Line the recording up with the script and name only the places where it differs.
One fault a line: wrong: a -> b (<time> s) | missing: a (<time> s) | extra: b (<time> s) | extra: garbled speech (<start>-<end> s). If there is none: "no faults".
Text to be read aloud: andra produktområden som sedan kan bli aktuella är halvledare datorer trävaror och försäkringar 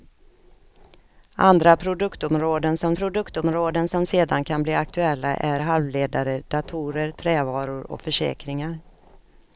extra: produktområden som (2.9 s)